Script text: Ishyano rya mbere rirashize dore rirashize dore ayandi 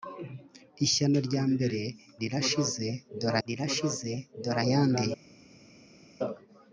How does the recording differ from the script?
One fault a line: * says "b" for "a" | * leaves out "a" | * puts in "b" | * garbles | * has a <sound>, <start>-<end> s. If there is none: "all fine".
all fine